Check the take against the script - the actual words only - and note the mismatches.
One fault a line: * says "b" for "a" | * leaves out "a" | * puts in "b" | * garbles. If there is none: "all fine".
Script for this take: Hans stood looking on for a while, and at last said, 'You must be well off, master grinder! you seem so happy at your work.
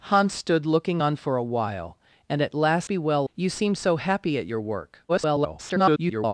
* leaves out "said You must"
* leaves out "off master grinder"
* garbles